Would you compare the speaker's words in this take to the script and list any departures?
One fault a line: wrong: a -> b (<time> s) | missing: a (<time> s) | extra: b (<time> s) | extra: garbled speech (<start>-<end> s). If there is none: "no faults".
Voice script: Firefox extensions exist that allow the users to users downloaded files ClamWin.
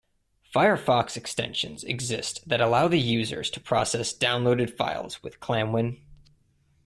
wrong: users -> process (3.6 s)
extra: with (5.2 s)